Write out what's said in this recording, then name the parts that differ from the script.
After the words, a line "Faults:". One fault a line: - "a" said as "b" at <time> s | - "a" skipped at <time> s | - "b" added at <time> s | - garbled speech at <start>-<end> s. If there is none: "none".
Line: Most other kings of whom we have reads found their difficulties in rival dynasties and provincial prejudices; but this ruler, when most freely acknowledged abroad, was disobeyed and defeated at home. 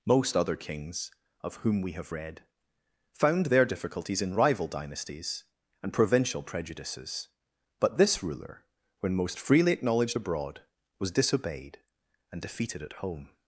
Most other kings of whom we have read found their difficulties in rival dynasties and provincial prejudices; but this ruler, when most freely acknowledged abroad, was disobeyed and defeated at home.
Faults:
- "reads" said as "read" at 2.1 s